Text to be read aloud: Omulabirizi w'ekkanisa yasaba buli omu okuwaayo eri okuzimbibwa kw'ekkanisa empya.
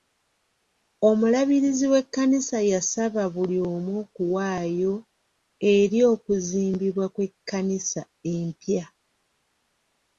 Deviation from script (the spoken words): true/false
false